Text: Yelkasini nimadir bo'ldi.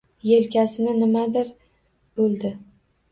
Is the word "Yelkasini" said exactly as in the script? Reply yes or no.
yes